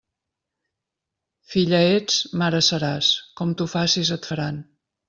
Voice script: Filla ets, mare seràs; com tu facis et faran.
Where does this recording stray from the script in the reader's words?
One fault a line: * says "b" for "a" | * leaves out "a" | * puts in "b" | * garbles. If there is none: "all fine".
all fine